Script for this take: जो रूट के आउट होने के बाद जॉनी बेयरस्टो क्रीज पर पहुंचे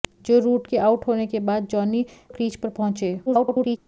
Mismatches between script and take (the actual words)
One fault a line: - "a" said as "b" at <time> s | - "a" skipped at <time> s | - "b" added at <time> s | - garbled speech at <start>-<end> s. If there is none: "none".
- "बेयरस्टो" skipped at 2.0 s
- garbled speech at 3.3-3.8 s